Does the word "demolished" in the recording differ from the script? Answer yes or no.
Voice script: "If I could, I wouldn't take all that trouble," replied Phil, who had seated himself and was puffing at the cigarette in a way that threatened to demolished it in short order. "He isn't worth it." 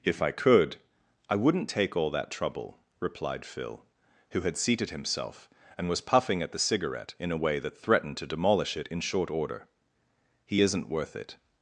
yes